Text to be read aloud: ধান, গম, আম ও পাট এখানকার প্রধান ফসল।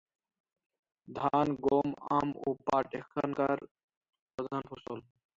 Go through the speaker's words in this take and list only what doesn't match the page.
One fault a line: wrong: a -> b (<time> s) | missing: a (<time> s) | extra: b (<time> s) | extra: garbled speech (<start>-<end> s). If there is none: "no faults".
no faults